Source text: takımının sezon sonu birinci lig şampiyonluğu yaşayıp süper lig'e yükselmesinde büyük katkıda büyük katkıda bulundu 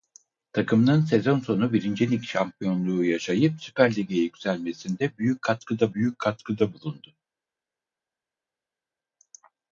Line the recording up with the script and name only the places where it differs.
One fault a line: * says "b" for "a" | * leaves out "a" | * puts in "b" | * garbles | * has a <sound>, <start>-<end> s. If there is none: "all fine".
all fine